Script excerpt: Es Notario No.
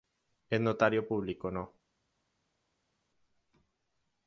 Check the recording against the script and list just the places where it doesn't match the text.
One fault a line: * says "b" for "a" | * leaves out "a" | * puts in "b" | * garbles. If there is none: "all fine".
* puts in "Público"